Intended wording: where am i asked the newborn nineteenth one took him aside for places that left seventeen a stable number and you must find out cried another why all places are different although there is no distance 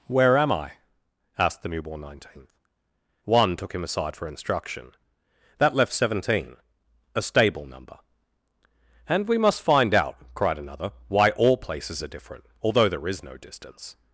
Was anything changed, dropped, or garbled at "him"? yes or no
no